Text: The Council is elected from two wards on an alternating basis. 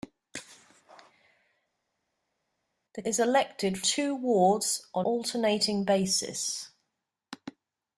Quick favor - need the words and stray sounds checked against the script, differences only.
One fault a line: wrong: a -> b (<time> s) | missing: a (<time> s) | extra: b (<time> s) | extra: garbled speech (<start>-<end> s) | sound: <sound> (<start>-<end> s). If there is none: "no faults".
missing: Council (3.0 s)
missing: from (3.8 s)
missing: an (5.1 s)